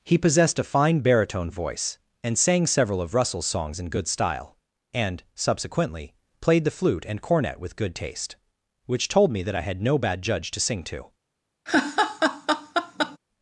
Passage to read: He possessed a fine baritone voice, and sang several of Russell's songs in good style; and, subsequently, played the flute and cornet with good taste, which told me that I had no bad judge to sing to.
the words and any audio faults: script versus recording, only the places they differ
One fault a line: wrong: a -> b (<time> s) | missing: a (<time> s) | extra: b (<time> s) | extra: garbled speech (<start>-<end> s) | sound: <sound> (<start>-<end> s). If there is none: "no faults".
sound: laugh (11.7-13.2 s)